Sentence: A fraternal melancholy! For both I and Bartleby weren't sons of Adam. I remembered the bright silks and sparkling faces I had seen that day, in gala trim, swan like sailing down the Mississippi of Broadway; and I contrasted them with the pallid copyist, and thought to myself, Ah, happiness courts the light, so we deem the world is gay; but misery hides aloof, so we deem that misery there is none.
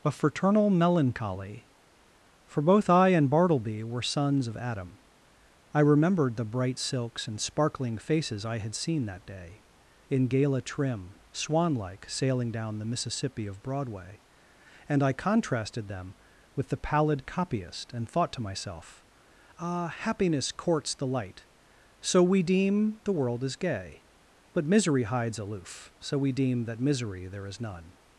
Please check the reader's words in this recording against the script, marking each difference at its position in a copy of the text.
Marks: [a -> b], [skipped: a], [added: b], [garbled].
A fraternal melancholy! For both I and Bartleby [weren't -> were] sons of Adam. I remembered the bright silks and sparkling faces I had seen that day, in gala trim, swan like sailing down the Mississippi of Broadway; and I contrasted them with the pallid copyist, and thought to myself, Ah, happiness courts the light, so we deem the world is gay; but misery hides aloof, so we deem that misery there is none.